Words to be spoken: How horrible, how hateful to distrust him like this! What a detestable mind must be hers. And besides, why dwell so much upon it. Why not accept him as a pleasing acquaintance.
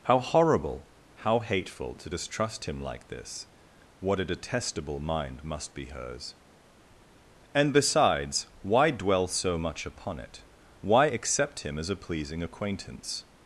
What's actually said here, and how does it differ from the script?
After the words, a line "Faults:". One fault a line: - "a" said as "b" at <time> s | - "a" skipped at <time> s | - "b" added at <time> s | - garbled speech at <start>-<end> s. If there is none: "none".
How horrible, how hateful to distrust him like this! What a detestable mind must be hers. And besides, why dwell so much upon it. Why accept him as a pleasing acquaintance.
Faults:
- "not" skipped at 11.1 s